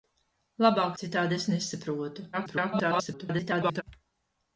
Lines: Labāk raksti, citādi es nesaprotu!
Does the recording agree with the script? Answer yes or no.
no